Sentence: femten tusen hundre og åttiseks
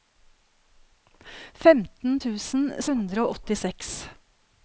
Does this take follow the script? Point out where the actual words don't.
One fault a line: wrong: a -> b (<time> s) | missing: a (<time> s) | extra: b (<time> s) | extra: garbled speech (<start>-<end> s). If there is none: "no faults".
no faults